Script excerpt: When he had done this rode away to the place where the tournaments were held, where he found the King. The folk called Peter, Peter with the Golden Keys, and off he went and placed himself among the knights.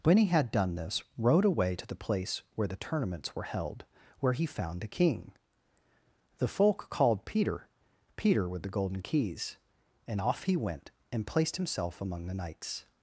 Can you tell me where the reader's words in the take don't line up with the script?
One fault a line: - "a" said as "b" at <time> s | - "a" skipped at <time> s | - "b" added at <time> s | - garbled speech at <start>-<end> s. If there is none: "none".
none